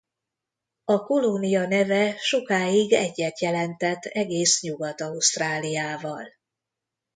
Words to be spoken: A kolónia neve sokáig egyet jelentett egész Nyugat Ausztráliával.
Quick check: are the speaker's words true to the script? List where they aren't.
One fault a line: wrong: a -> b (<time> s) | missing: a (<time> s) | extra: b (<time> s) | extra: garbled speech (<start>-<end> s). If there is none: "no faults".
no faults